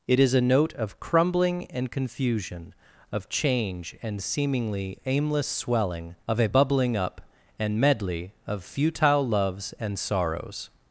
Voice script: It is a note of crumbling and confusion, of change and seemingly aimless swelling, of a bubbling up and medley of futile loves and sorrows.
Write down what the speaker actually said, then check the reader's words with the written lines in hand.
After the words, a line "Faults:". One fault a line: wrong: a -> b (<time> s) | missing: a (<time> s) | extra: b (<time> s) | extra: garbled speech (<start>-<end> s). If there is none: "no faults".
It is a note of crumbling and confusion, of change and seemingly aimless swelling, of a bubbling up and medley of futile loves and sorrows.
Faults:
no faults